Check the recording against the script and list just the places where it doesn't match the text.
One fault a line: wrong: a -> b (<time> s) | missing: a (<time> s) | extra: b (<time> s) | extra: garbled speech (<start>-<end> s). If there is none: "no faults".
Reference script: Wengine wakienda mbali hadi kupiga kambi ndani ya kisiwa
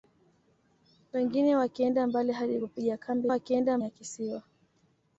wrong: ndani -> wakienda (3.3 s)